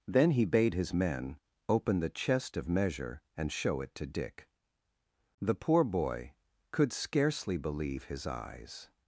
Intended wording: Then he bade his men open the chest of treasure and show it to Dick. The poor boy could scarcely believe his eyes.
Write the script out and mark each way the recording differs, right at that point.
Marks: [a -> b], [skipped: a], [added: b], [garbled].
Then he bade his men open the chest of [treasure -> measure] and show it to Dick. The poor boy could scarcely believe his eyes.